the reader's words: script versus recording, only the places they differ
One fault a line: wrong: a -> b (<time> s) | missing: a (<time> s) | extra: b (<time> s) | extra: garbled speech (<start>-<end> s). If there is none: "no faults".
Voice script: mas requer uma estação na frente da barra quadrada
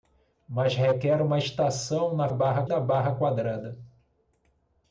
wrong: frente -> barra (2.3 s)